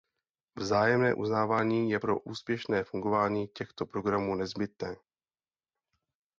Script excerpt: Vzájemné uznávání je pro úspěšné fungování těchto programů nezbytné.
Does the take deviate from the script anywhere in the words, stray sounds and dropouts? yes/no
no